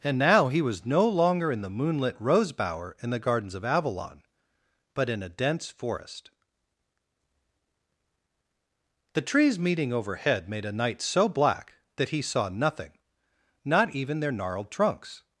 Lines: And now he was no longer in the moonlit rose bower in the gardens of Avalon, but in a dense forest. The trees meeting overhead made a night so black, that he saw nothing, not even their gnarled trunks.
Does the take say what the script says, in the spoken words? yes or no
yes